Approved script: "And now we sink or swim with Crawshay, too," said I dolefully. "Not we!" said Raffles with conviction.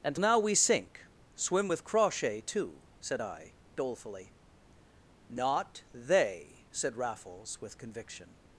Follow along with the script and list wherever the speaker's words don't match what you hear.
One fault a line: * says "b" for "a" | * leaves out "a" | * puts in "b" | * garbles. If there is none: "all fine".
* leaves out "or"
* says "they" for "we"